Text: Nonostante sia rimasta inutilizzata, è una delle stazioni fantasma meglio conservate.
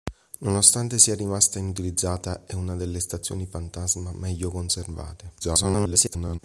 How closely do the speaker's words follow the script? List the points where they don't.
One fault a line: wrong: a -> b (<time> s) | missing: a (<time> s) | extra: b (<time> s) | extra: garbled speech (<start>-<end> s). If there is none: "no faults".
extra: garbled speech (5.4-6.4 s)